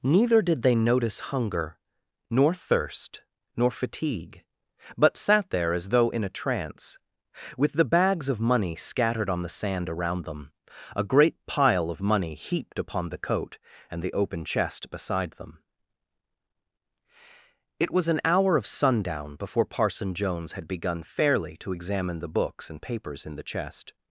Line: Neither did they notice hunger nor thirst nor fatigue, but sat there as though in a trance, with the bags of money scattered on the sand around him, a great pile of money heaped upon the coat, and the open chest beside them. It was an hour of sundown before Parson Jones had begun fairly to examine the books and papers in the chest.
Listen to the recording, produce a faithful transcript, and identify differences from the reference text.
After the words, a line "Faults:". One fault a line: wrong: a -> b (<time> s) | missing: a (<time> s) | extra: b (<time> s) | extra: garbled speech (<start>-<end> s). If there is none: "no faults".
Neither did they notice hunger nor thirst nor fatigue, but sat there as though in a trance, with the bags of money scattered on the sand around them, a great pile of money heaped upon the coat, and the open chest beside them. It was an hour of sundown before Parson Jones had begun fairly to examine the books and papers in the chest.
Faults:
wrong: him -> them (10.2 s)